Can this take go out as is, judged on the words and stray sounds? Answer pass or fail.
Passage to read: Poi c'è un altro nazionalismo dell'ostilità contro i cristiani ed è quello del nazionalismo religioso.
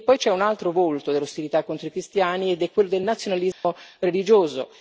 fail